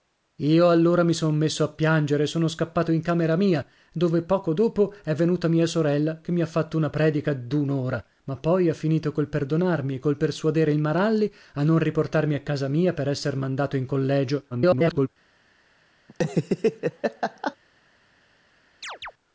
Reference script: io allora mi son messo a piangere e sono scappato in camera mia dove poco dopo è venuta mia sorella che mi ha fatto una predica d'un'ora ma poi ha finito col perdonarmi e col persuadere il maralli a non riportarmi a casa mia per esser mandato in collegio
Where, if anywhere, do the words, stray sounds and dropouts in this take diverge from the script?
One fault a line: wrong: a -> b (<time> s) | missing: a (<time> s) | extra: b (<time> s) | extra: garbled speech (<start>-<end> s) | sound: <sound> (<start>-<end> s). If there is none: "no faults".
extra: garbled speech (14.5-15.1 s)
sound: laugh (16.1-17.6 s)
sound: chirp (18.8-19.1 s)